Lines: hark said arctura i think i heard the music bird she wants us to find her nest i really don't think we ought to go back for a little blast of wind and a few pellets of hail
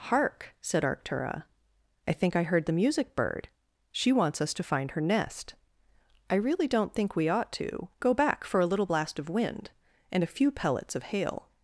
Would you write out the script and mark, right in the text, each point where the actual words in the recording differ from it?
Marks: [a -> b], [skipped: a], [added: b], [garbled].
hark said arctura i think i heard the music bird she wants us to find her nest i really don't think we ought to go back for a little blast of wind and a few pellets of hail